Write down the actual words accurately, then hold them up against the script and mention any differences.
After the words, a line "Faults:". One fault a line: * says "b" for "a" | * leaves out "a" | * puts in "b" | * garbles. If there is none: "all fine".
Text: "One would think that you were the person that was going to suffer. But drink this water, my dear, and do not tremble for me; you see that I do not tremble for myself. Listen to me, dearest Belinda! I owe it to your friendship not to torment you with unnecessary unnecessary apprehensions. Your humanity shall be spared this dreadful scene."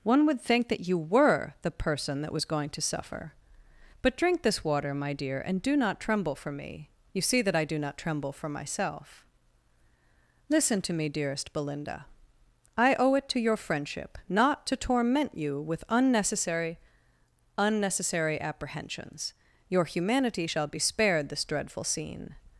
"One would think that you were the person that was going to suffer. But drink this water, my dear, and do not tremble for me; you see that I do not tremble for myself. Listen to me, dearest Belinda! I owe it to your friendship not to torment you with unnecessary unnecessary apprehensions. Your humanity shall be spared this dreadful scene."
Faults:
all fine